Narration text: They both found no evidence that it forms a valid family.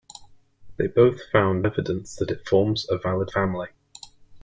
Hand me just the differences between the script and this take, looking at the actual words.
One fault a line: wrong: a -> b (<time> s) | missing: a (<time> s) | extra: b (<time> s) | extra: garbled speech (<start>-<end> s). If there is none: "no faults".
missing: no (1.7 s)